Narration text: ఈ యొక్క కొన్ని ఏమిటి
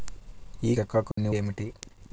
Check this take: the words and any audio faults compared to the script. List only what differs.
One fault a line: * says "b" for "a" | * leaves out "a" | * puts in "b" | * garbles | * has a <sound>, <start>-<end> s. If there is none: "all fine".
* has a dropout, 1.1-1.2 s